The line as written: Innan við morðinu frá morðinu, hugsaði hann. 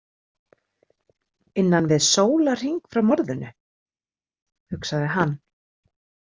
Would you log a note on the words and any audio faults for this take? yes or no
yes